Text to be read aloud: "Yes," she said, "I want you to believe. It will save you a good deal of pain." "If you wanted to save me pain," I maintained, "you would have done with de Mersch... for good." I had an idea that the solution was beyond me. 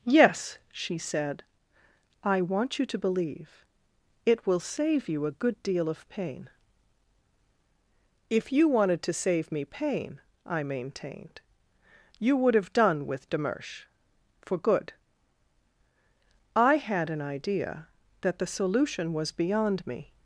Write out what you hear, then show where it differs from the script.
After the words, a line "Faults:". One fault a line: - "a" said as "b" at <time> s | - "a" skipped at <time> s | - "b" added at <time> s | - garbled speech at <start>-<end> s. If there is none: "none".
"Yes," she said, "I want you to believe. It will save you a good deal of pain." "If you wanted to save me pain," I maintained, "you would have done with de Mersch... for good." I had an idea that the solution was beyond me.
Faults:
none